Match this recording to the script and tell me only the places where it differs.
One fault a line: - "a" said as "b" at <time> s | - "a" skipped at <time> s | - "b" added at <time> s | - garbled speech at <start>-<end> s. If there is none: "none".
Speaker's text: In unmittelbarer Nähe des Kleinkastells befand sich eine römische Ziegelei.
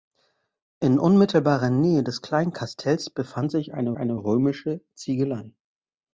- "eine" added at 4.0 s